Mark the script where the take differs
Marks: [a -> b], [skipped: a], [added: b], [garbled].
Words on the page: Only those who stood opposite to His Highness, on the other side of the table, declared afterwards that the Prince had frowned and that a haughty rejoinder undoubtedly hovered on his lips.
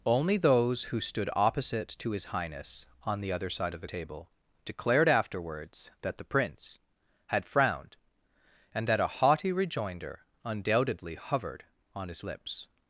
Only those who stood opposite to His Highness, on the other side of the table, declared afterwards that the Prince had frowned and that a haughty rejoinder undoubtedly hovered on his lips.